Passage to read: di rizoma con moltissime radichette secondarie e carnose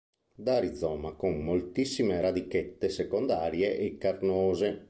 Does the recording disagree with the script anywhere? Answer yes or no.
yes